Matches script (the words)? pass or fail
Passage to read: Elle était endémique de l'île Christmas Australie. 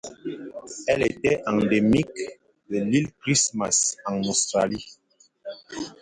fail